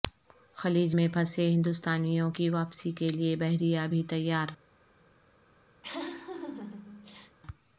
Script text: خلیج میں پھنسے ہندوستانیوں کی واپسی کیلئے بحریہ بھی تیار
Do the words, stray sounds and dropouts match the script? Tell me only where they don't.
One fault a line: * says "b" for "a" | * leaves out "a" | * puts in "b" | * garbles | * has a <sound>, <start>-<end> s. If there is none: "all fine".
* has a laugh, 5.8-7.4 s